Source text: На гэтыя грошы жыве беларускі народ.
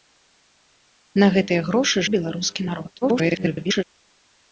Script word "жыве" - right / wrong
wrong